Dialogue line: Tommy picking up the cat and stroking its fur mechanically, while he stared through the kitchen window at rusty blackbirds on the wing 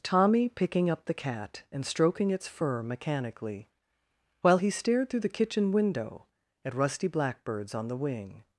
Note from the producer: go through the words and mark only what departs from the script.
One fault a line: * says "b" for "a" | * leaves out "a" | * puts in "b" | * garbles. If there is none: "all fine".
all fine